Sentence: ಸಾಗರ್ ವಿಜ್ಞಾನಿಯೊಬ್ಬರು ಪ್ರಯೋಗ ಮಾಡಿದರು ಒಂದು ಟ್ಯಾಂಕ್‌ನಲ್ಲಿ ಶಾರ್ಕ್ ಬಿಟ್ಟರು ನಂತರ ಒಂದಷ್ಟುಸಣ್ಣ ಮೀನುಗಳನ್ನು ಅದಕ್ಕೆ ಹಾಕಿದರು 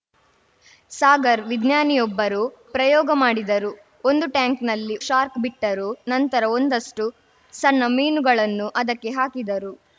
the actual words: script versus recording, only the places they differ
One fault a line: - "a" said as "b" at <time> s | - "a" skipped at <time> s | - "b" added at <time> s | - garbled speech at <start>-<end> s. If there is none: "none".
none